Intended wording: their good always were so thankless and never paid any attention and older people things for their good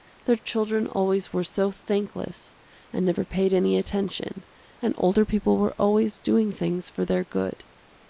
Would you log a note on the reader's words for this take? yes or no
yes